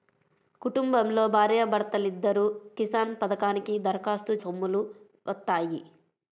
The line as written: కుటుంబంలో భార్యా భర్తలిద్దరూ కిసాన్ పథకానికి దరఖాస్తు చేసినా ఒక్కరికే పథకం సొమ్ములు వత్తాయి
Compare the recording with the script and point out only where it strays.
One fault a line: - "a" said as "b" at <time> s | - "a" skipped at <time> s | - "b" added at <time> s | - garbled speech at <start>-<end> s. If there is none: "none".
- "చేసినా ఒక్కరికే పథకం" skipped at 4.3 s